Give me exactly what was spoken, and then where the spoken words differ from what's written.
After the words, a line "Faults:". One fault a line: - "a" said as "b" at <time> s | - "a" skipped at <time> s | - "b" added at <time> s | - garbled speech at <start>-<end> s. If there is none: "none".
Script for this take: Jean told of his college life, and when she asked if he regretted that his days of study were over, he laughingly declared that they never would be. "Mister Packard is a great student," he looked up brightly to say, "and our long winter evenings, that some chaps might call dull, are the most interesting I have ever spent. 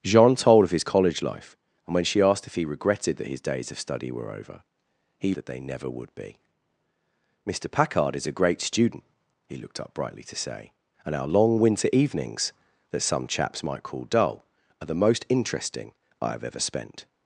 Jean told of his college life, and when she asked if he regretted that his days of study were over, he that they never would be. "Mister Packard is a great student," he looked up brightly to say, "and our long winter evenings, that some chaps might call dull, are the most interesting I have ever spent.
Faults:
- "laughingly declared" skipped at 5.3 s